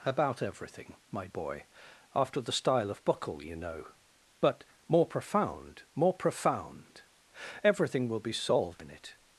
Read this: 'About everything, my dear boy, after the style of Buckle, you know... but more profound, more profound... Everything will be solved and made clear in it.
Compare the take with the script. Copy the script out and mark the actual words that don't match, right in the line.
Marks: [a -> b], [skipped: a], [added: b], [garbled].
'About everything, my [skipped: dear] boy, after the style of Buckle, you know... but more profound, more profound... Everything will be solved [skipped: and made clear] in it.